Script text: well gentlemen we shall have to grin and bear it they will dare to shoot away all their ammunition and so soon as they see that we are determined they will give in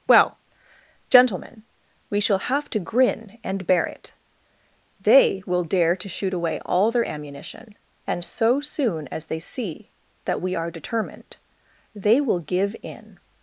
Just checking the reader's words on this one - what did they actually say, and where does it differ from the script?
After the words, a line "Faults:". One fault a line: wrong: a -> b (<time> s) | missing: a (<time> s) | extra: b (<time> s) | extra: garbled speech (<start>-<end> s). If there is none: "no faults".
well gentlemen we shall have to grin and bear it they will dare to shoot away all their ammunition and so soon as they see that we are determined they will give in
Faults:
no faults